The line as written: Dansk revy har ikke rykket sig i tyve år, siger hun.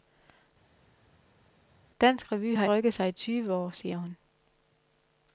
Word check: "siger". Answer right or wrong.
right